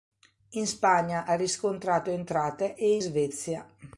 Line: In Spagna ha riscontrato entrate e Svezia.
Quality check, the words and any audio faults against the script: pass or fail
pass